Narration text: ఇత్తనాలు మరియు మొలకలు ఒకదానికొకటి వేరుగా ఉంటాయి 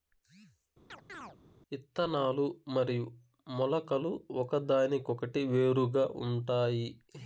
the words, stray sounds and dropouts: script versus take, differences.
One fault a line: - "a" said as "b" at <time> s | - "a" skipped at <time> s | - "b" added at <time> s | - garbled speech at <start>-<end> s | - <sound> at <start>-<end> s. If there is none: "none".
- chirp at 0.9-1.4 s